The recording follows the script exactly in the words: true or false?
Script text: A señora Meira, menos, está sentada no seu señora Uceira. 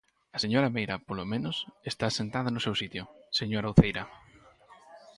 false